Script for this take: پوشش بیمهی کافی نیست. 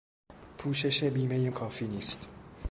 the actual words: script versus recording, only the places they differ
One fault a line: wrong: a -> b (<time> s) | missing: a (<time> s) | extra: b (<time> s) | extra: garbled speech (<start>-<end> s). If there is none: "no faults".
no faults